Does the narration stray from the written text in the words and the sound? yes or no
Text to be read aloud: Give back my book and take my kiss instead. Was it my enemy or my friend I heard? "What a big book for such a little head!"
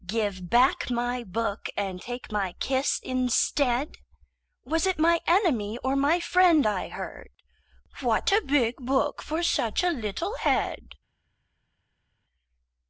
no